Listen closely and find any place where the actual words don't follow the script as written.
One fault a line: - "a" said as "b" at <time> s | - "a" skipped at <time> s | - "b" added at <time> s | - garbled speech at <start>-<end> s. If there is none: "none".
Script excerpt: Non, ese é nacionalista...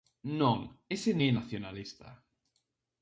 none